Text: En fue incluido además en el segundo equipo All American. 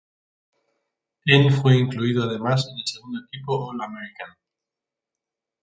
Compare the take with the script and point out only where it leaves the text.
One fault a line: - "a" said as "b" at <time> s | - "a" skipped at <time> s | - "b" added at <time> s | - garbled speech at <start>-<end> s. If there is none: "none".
none